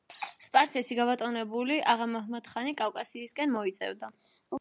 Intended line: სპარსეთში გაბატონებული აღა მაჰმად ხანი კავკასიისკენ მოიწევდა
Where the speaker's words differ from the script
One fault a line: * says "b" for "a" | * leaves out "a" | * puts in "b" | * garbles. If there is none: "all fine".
all fine